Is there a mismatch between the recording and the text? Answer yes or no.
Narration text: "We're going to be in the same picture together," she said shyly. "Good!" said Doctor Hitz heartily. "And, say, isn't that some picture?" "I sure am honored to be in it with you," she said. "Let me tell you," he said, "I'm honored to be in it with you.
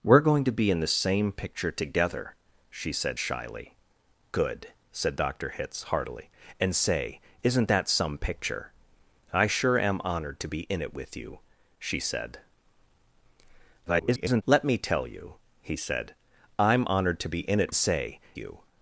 yes